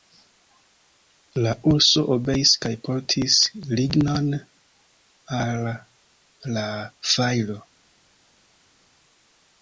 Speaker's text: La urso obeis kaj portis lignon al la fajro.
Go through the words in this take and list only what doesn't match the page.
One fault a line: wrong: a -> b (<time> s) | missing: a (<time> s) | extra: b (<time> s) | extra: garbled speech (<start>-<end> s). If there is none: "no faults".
no faults